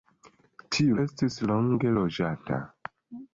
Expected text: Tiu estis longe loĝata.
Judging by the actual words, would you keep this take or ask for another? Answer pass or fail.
pass